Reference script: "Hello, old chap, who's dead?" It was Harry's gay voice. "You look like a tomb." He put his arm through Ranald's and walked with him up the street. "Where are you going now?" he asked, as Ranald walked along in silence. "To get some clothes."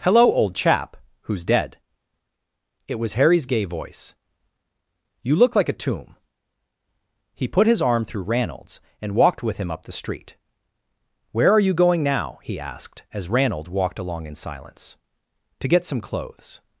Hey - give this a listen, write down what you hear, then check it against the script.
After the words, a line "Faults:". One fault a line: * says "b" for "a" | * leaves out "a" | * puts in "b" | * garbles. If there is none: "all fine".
"Hello, old chap, who's dead?" It was Harry's gay voice. "You look like a tomb." He put his arm through Ranald's and walked with him up the street. "Where are you going now?" he asked, as Ranald walked along in silence. "To get some clothes."
Faults:
all fine